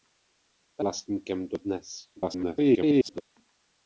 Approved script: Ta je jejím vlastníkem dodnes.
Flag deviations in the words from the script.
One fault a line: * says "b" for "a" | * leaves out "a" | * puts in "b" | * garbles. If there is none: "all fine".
* leaves out "je jejím"
* garbles